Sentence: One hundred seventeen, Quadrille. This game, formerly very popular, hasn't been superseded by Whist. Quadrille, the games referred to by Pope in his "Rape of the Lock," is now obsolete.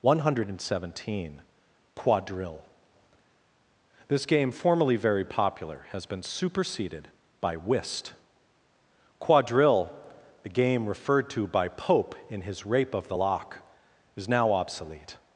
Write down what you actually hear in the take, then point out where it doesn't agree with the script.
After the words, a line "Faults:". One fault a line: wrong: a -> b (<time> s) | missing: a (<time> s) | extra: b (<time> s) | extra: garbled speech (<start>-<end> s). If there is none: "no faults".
One hundred seventeen, Quadrille. This game, formerly very popular, has been superseded by Whist. Quadrille, the game referred to by Pope in his "Rape of the Lock," is now obsolete.
Faults:
wrong: hasn't -> has (5.9 s)
wrong: games -> game (10.5 s)